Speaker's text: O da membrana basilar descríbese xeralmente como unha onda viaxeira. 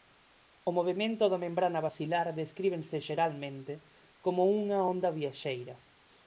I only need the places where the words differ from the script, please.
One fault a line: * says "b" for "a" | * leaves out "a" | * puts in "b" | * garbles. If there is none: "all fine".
* puts in "movemento"